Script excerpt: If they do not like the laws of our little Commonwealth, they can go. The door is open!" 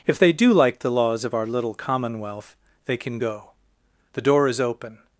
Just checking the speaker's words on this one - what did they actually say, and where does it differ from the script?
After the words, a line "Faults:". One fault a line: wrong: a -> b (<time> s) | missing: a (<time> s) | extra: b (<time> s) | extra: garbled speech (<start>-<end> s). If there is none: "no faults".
If they do like the laws of our little Commonwealth, they can go. The door is open!"
Faults:
missing: not (0.5 s)